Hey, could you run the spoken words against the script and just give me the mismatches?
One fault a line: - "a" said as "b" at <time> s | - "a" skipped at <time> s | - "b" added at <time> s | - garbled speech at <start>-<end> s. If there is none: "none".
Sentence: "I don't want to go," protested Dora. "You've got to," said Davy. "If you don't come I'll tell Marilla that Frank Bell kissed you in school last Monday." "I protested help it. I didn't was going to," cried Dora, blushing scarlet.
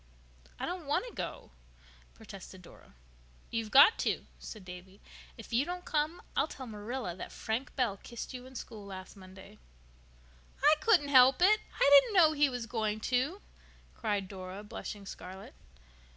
- "protested" said as "couldn't" at 10.8 s
- "know he" added at 12.2 s